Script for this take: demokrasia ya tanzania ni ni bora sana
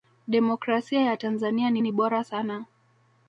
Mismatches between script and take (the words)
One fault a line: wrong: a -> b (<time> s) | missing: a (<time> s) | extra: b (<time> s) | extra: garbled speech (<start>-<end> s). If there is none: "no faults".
no faults